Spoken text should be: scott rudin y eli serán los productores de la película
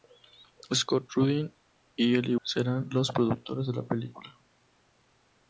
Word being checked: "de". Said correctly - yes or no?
yes